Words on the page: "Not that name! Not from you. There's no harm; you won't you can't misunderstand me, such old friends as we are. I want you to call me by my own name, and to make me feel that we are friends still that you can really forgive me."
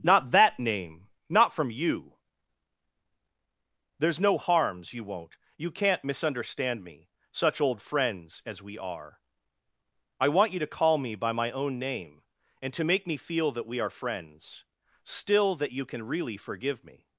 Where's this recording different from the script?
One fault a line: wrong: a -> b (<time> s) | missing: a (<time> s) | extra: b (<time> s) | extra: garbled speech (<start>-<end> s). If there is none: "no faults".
wrong: harm -> harms (4.4 s)